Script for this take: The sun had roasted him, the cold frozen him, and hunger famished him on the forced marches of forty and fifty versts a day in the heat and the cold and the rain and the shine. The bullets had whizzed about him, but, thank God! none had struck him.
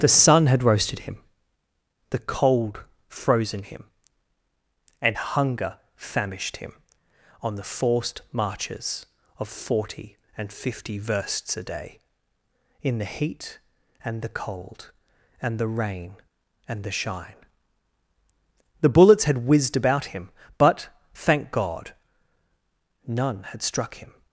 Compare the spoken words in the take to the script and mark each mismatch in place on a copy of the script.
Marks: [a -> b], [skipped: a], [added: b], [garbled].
The sun had roasted him, the cold frozen him, and hunger famished him on the forced marches of forty and fifty versts a day in the heat and the cold and the rain and the shine. The bullets had whizzed about him, but, thank God! none had struck him.